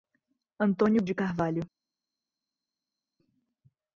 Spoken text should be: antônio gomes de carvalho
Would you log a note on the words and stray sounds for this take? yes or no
yes